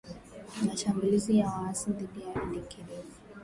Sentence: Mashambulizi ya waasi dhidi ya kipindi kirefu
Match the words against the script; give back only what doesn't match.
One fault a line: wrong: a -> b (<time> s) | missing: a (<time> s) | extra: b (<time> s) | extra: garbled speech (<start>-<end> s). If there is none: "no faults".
no faults